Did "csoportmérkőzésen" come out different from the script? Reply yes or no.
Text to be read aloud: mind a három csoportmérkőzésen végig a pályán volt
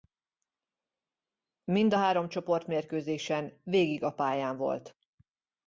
no